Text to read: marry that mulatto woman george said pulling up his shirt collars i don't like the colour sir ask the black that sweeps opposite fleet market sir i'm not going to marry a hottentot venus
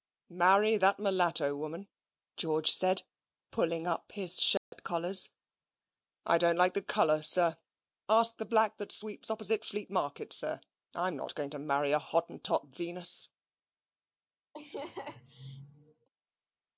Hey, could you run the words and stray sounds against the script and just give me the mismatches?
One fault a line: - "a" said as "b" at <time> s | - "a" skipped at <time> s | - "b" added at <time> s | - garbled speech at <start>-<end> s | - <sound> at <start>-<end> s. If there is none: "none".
- dropout at 4.6-4.7 s
- laugh at 14.5-16.1 s